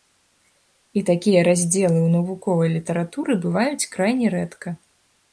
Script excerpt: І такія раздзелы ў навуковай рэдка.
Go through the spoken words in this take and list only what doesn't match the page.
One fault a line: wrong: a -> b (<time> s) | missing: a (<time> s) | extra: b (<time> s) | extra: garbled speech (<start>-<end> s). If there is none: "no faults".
extra: літаратуры бываюць крайне (2.8 s)